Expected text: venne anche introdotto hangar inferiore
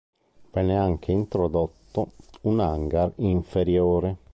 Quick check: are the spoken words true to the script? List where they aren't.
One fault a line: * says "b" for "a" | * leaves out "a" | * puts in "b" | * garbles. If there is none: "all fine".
* puts in "un"